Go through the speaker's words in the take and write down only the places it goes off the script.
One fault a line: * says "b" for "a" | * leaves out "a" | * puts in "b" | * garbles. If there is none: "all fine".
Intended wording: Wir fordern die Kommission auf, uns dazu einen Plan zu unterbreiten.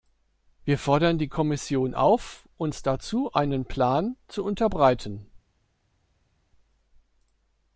all fine